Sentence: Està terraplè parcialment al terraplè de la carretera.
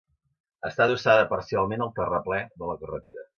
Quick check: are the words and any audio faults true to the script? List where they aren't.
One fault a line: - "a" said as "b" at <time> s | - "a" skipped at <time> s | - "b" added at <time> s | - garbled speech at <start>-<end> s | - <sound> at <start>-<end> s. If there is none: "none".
- "terraplè" said as "adossada" at 0.9 s
- dropout at 3.0-3.1 s